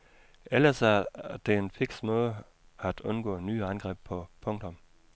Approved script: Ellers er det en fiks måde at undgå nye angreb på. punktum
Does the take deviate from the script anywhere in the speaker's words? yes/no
no